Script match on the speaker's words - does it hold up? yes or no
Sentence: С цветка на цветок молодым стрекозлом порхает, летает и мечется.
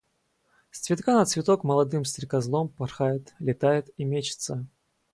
yes